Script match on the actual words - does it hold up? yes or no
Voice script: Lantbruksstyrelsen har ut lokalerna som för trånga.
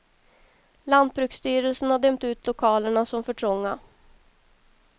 no